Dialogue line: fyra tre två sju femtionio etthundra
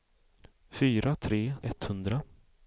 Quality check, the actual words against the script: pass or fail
fail